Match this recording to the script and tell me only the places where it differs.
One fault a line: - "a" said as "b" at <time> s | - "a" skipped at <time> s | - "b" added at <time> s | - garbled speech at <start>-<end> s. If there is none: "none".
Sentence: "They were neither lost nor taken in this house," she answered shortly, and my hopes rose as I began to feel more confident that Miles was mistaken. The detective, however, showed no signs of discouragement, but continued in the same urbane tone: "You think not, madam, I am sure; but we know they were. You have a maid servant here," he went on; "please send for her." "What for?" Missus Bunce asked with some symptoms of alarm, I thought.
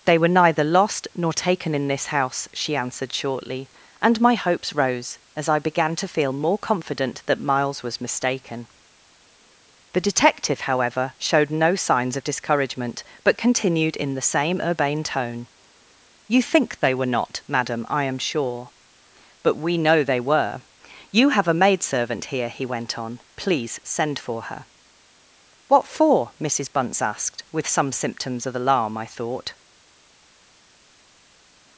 - "they were" added at 16.8 s